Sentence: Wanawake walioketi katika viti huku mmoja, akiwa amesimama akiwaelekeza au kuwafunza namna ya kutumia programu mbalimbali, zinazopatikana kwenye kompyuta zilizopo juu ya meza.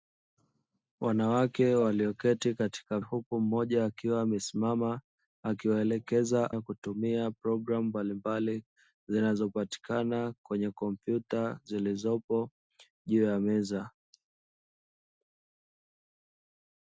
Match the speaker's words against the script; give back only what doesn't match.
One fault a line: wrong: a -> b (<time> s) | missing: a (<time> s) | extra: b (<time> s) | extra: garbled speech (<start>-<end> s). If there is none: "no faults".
missing: viti (3.0 s)
missing: au kuwafunza namna (6.5 s)